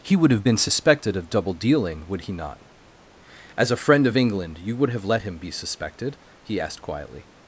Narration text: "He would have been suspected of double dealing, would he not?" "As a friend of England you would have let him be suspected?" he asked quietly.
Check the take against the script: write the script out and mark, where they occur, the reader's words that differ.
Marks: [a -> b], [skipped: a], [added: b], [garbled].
"He would have been suspected of double dealing, would he not?" "As a friend of England you would have let him be suspected?" he asked quietly.